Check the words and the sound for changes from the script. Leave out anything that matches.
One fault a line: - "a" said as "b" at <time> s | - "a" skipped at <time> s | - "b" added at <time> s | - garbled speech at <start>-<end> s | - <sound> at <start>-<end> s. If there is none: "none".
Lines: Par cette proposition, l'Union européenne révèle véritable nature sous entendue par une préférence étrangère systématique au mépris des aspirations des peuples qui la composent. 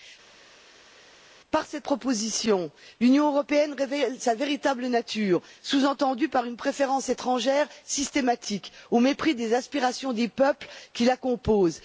- "sa" added at 4.2 s